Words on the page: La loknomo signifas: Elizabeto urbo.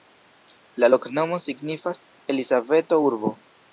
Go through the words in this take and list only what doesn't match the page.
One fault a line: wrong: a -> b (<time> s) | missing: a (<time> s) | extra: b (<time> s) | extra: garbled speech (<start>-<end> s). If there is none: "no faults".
no faults